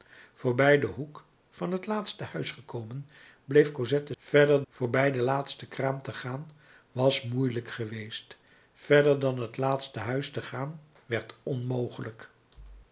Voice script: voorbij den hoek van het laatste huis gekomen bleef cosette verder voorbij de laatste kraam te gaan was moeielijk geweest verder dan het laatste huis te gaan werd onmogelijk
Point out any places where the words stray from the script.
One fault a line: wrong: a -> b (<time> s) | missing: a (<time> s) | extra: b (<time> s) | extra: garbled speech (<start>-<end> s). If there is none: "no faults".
no faults